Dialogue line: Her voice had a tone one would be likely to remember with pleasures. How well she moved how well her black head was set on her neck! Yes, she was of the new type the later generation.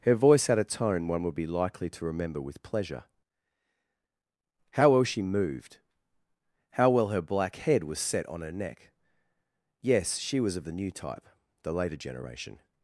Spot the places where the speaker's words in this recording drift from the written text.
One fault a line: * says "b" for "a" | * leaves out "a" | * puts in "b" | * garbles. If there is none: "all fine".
* says "pleasure" for "pleasures"